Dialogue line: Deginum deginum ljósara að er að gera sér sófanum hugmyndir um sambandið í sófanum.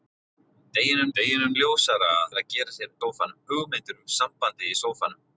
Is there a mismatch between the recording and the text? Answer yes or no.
no